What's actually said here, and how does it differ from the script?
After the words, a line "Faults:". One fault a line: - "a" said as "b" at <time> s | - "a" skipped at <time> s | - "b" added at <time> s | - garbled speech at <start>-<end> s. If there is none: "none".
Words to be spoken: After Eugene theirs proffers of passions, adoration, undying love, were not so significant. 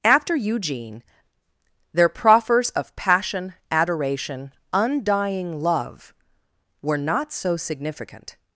After Eugene their proffers of passion, adoration, undying love, were not so significant.
Faults:
- "theirs" said as "their" at 1.9 s
- "passions" said as "passion" at 3.0 s